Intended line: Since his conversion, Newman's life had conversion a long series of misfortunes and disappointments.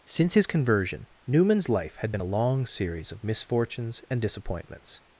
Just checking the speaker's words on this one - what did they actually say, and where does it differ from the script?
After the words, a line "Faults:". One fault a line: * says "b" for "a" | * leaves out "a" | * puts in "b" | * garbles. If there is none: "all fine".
Since his conversion, Newman's life had been a long series of misfortunes and disappointments.
Faults:
* says "been" for "conversion"